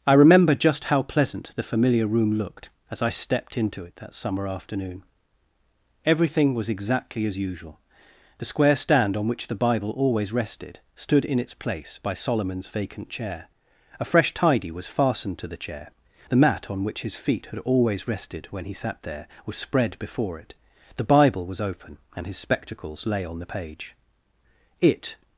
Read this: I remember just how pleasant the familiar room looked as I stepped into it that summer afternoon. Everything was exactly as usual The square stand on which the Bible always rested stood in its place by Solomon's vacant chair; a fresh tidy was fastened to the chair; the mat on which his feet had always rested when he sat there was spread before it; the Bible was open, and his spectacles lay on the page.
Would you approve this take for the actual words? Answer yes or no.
no